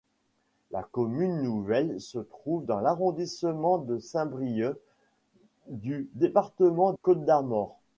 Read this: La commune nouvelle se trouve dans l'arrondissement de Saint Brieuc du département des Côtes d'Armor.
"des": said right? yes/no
no